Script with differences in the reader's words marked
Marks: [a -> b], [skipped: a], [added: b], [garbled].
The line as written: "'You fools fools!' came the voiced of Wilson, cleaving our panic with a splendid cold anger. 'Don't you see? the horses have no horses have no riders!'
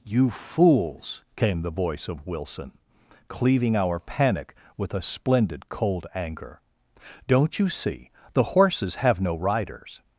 "'You fools [skipped: fools!'] came the [voiced -> voice] of Wilson, cleaving our panic with a splendid cold anger. 'Don't you see? the horses have no [skipped: horses have no] riders!'